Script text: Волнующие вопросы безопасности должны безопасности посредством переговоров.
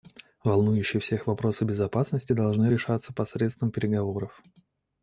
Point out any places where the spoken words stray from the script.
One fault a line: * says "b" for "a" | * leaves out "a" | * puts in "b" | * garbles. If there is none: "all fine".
* puts in "всех"
* says "решаться" for "безопасности"